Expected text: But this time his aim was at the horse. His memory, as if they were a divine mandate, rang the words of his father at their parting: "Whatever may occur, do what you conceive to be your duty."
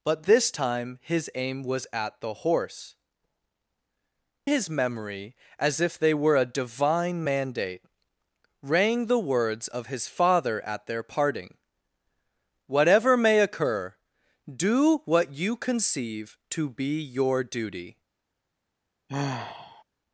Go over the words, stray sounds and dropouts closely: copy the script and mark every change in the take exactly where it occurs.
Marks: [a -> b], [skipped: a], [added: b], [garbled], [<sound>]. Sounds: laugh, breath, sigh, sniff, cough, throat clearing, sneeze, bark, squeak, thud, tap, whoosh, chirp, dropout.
But this time his aim was at the horse. His memory, as if they were a divine mandate, rang the words of his father at their parting: "Whatever may occur, do what you conceive to be your duty." [sigh]